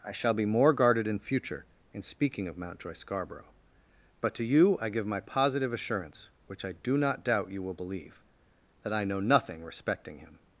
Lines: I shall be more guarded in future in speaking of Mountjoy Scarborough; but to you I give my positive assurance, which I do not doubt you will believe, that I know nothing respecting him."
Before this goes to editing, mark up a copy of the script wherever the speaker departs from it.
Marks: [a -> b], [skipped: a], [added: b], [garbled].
I shall be more guarded in future in speaking of Mountjoy Scarborough; but to you I give my positive assurance, which I do not doubt you will believe, that I know nothing respecting him."